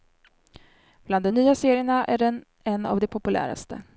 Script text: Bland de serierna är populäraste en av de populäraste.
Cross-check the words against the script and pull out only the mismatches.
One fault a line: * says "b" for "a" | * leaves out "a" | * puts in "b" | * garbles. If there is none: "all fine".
* puts in "nya"
* says "den" for "populäraste"